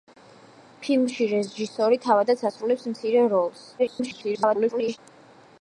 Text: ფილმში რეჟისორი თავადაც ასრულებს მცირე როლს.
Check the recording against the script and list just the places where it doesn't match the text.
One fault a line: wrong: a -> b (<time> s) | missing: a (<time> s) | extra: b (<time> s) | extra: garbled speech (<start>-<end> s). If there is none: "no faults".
extra: garbled speech (3.8-5.0 s)